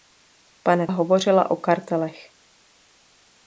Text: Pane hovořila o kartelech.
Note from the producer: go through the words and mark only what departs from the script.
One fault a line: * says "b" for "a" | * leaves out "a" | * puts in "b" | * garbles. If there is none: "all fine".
all fine